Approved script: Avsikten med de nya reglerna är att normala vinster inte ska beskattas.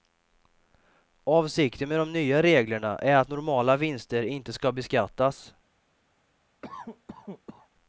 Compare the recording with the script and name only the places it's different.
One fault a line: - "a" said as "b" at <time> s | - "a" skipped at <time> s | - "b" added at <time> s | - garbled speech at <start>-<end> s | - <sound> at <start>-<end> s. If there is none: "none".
- cough at 6.6-7.7 s